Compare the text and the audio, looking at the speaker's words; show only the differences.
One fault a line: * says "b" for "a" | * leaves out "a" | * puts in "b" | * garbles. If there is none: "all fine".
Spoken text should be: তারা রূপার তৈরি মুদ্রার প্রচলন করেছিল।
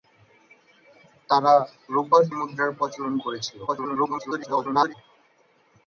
* leaves out "তৈরি"
* garbles